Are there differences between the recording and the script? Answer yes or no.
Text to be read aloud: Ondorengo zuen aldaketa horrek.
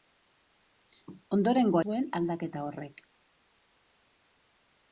no